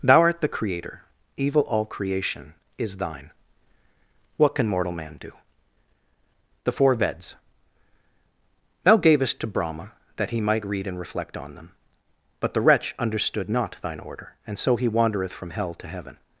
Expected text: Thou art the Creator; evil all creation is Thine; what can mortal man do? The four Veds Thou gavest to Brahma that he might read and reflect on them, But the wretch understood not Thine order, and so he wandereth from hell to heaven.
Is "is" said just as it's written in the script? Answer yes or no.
yes